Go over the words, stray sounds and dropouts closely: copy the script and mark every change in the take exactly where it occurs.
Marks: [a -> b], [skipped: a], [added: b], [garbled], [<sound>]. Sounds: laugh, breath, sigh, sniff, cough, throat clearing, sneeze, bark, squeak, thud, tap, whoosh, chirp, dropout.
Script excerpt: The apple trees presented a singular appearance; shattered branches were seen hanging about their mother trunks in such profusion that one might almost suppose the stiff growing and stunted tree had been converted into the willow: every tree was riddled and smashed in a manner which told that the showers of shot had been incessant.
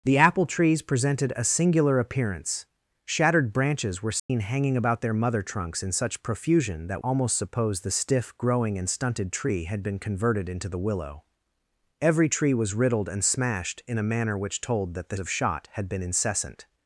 The apple trees presented a singular appearance; shattered branches were seen [dropout] hanging about their mother trunks in such profusion that [skipped: one might] almost suppose the stiff growing and stunted tree had been converted into the willow: every tree was riddled and smashed in a manner which told that the [skipped: showers] of shot had been incessant.